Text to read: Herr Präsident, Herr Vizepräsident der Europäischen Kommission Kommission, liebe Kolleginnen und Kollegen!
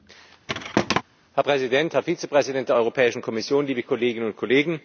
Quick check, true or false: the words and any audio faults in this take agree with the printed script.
false